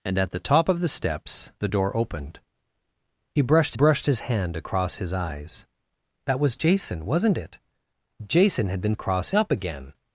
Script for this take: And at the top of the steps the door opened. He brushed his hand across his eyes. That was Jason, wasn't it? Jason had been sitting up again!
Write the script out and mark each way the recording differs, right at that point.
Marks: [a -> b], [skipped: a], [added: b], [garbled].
And at the top of the steps the door opened. He brushed [added: brushed] his hand across his eyes. That was Jason, wasn't it? Jason had been [sitting -> across] up again!